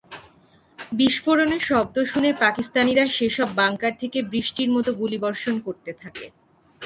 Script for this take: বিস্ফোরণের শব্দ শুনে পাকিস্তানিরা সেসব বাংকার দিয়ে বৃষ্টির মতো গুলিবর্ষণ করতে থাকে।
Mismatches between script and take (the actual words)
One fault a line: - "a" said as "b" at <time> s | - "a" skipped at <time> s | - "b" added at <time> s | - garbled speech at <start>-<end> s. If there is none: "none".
- "দিয়ে" said as "থেকে" at 4.0 s